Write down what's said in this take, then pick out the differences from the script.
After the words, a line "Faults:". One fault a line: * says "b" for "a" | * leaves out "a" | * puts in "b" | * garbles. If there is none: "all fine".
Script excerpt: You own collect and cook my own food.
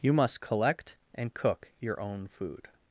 You must collect and cook your own food.
Faults:
* says "must" for "own"
* says "your" for "my"